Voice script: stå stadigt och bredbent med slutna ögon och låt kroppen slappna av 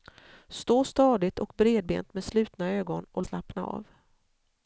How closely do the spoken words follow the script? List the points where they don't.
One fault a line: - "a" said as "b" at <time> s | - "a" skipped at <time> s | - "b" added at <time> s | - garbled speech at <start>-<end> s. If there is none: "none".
- "låt kroppen" skipped at 3.2 s